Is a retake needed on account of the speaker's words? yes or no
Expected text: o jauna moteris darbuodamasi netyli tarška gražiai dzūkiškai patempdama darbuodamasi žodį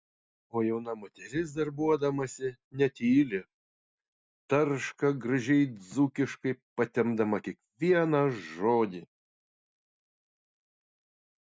yes